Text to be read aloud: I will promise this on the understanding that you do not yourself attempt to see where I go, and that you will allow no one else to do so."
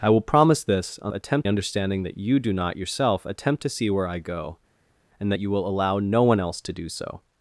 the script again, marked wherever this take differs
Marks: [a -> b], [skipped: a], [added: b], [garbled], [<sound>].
I will promise this on [the -> attempt] understanding that you do not yourself attempt to see where I go, and that you will allow no one else to do so."